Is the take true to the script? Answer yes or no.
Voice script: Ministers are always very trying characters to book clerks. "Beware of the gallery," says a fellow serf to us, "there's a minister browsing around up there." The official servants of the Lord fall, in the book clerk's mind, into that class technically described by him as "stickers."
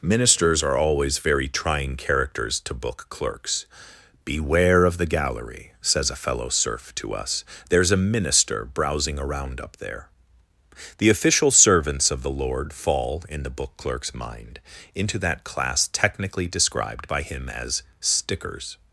yes